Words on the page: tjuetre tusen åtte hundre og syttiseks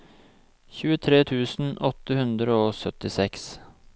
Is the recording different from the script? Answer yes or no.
no